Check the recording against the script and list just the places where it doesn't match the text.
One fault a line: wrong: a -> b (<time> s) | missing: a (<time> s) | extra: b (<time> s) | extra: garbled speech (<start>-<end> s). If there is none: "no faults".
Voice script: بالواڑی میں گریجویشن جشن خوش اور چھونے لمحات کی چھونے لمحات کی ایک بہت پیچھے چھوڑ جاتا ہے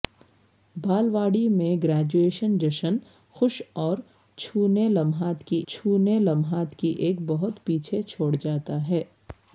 no faults